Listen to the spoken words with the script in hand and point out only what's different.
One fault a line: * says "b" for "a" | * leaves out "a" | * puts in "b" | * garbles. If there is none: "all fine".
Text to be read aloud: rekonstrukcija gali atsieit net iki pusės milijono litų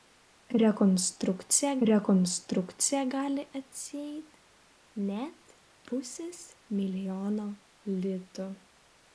* puts in "rekonstrukcija"
* leaves out "iki"